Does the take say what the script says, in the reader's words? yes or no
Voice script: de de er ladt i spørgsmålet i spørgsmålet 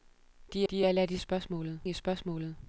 yes